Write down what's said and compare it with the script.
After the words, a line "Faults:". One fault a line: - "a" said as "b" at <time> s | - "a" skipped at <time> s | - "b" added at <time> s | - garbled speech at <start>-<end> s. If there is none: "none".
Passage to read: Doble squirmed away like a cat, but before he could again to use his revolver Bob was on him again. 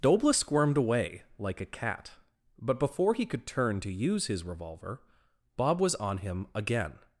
Doble squirmed away like a cat, but before he could turn to use his revolver Bob was on him again.
Faults:
- "again" said as "turn" at 3.5 s